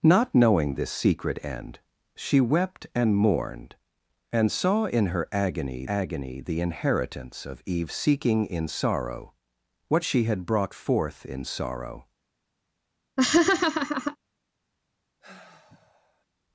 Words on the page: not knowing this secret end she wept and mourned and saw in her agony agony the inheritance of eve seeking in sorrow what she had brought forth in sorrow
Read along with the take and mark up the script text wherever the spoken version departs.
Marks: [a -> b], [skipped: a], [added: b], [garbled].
not knowing this secret end she wept and mourned and saw in her agony agony the inheritance of eve seeking in sorrow what she had brought forth in sorrow